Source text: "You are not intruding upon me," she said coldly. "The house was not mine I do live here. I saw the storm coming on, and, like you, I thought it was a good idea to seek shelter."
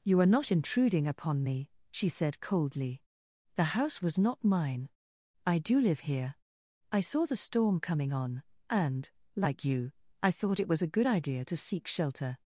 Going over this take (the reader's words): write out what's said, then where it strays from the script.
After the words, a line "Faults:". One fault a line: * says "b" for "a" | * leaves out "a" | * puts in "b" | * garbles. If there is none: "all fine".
"You are not intruding upon me," she said coldly. "The house was not mine I do live here. I saw the storm coming on, and, like you, I thought it was a good idea to seek shelter."
Faults:
all fine